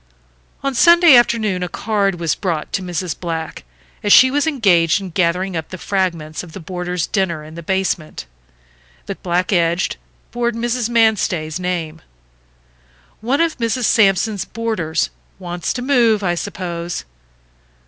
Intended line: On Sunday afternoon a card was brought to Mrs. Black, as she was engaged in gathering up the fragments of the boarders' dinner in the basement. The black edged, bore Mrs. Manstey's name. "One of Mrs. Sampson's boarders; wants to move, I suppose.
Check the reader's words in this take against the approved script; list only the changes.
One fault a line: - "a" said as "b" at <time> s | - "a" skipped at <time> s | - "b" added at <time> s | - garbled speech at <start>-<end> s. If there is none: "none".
none